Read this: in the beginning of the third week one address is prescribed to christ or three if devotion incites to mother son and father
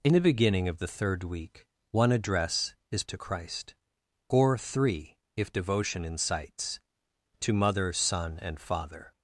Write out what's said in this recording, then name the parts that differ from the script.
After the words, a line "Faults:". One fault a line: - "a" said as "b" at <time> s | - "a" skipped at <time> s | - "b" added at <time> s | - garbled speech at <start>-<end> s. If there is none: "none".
in the beginning of the third week one address is to christ or three if devotion incites to mother son and father
Faults:
- "prescribed" skipped at 3.0 s